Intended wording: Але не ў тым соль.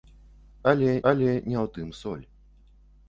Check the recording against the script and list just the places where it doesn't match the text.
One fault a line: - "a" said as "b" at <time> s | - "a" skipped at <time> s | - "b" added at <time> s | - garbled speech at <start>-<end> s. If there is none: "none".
- "але" added at 1.1 s